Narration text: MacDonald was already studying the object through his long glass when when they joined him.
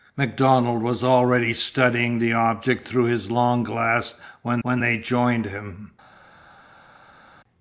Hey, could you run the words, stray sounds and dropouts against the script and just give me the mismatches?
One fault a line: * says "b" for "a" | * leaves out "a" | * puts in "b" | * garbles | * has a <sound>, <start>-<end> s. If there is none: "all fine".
all fine